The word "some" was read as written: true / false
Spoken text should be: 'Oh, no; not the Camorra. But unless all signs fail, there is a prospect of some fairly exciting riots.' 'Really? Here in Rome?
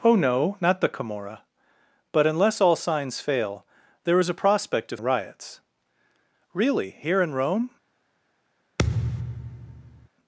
false